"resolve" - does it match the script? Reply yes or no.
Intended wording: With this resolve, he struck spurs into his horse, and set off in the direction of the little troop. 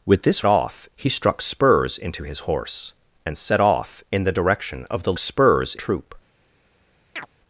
no